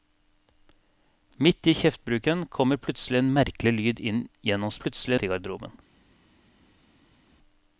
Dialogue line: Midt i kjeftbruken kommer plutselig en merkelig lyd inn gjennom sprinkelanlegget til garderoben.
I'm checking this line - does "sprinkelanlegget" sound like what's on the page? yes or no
no